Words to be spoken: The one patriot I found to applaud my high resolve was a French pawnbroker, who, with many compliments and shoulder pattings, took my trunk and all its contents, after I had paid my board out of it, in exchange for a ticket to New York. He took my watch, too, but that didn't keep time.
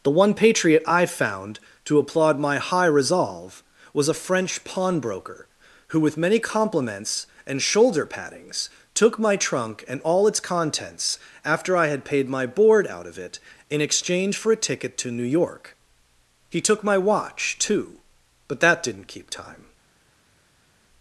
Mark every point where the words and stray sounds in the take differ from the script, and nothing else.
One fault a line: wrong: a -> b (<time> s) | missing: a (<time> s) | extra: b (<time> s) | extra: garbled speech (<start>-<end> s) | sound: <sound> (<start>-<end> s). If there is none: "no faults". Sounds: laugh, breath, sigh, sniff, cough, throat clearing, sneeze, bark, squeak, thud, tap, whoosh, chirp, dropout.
no faults